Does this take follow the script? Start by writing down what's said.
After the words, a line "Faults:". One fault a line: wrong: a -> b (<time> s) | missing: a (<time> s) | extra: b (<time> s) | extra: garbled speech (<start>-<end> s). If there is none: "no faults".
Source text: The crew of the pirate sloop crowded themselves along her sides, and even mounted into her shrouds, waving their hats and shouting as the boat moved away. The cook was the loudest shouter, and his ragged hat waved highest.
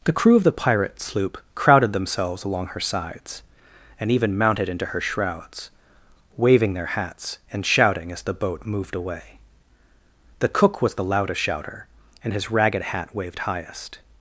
The crew of the pirate sloop crowded themselves along her sides, and even mounted into her shrouds, waving their hats and shouting as the boat moved away. The cook was the loudest shouter, and his ragged hat waved highest.
Faults:
no faults